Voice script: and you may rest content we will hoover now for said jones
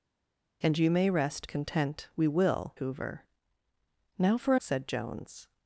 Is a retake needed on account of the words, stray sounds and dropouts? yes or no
no